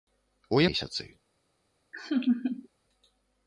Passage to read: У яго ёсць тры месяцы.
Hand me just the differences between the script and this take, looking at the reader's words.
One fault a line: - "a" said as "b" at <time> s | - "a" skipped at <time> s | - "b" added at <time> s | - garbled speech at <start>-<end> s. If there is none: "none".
- "яго ёсць тры" skipped at 0.6 s